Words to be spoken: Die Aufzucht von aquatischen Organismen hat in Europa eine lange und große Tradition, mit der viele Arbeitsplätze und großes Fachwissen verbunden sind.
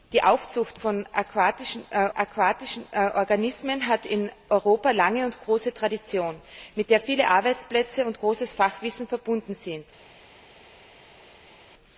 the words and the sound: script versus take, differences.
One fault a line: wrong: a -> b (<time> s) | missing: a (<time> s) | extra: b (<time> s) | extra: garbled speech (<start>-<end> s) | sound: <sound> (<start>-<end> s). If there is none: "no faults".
extra: aquatischen (2.1 s)